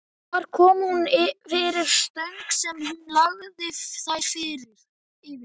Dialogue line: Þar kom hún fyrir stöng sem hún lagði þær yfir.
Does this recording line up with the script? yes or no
yes